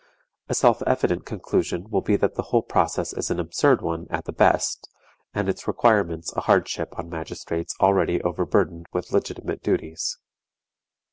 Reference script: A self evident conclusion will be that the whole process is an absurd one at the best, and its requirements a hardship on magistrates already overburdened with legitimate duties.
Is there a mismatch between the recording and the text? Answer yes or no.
no